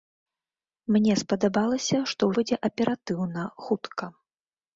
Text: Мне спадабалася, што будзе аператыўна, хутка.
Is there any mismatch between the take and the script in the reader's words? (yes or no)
no